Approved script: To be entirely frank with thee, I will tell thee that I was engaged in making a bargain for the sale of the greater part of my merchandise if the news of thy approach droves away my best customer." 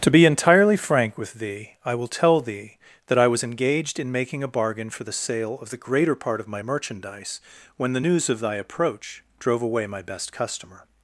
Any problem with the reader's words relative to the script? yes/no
yes